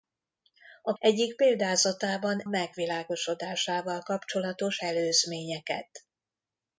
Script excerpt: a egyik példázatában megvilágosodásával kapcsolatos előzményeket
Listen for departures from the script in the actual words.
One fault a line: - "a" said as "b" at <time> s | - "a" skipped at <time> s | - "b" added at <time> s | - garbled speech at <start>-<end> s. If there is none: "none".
none